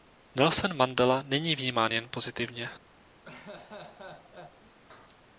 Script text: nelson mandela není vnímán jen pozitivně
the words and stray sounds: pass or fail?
fail